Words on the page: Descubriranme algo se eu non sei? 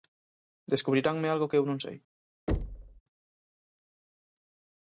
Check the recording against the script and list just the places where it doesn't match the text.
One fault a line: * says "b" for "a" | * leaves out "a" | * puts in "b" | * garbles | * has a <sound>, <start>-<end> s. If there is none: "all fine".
* says "que" for "se"
* has a thud, 2.5-3.0 s